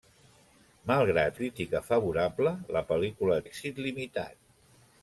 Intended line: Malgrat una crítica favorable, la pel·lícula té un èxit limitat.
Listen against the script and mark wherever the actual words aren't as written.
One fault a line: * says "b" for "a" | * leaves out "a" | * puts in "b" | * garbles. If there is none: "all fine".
* leaves out "una"
* leaves out "té un"